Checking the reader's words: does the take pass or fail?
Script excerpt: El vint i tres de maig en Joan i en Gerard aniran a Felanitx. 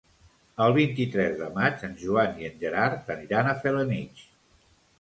pass